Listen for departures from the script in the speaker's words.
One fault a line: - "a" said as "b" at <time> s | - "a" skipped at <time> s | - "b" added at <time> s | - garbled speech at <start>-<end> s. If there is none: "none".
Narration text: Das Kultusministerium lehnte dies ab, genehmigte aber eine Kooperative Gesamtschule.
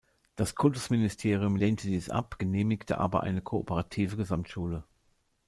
none